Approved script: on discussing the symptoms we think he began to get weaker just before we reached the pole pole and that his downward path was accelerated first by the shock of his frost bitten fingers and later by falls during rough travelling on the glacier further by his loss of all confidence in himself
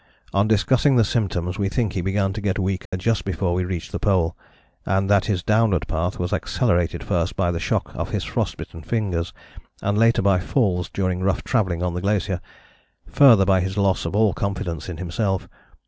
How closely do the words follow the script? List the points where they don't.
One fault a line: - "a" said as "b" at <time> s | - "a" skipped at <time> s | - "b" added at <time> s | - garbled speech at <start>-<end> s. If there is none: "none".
- "pole" skipped at 4.3 s